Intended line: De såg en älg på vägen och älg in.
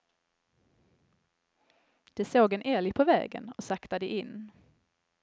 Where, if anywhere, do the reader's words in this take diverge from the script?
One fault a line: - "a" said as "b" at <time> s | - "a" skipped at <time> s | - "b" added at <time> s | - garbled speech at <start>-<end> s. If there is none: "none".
- "älg" said as "saktade" at 3.6 s